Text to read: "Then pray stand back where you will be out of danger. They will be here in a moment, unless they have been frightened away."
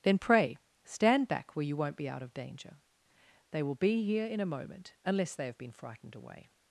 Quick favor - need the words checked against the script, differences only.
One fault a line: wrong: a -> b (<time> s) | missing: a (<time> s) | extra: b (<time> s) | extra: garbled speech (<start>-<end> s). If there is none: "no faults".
wrong: will -> won't (1.8 s)